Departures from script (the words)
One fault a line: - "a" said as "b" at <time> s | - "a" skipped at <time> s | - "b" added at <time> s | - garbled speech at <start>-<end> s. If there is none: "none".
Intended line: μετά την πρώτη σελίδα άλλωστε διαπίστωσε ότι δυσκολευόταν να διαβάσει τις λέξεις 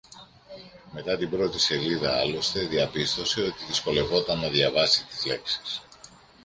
none